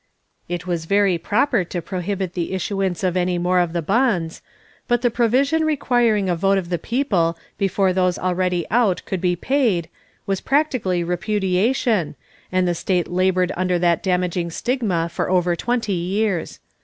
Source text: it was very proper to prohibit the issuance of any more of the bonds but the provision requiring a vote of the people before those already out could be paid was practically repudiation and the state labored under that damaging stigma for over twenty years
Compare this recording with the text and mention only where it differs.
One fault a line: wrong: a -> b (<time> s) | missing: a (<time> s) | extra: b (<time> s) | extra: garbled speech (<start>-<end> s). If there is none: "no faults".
no faults